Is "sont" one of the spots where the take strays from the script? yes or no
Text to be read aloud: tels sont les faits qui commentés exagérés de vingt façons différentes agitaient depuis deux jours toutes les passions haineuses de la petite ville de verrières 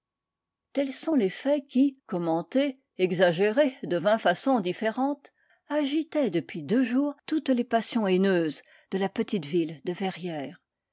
no